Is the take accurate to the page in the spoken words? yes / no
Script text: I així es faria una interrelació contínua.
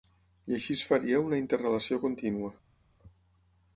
yes